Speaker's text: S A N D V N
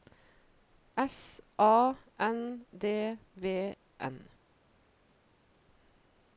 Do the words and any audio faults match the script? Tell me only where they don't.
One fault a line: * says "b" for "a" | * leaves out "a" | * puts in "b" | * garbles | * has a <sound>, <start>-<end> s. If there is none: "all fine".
all fine